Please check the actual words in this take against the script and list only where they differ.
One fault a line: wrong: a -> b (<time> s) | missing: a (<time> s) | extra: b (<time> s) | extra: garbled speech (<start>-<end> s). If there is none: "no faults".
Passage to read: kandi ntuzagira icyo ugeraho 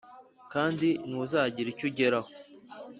no faults